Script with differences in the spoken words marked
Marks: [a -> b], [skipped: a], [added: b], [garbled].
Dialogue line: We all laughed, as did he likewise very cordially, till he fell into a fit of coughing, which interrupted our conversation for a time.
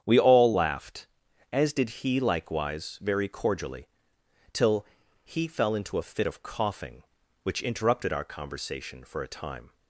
We all laughed, as did he likewise very cordially, till he fell into a fit of coughing, which interrupted our conversation for a time.